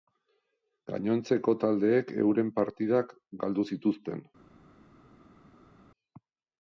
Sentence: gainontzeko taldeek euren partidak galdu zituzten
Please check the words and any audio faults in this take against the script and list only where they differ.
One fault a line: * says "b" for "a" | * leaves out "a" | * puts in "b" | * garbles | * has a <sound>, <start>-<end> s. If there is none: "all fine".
all fine